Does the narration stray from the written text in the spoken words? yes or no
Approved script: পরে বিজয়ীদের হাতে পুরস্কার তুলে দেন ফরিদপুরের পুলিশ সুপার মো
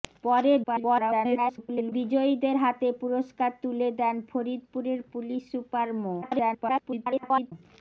yes